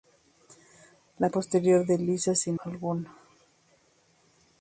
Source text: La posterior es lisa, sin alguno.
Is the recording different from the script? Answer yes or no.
no